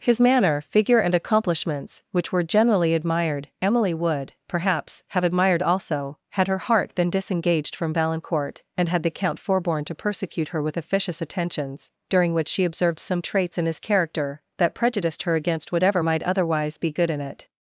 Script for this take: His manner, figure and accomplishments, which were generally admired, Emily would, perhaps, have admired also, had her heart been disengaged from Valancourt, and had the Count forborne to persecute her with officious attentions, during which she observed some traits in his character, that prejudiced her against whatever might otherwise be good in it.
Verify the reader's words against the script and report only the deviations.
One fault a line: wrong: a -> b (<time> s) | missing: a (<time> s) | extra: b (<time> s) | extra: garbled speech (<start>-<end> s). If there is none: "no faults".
no faults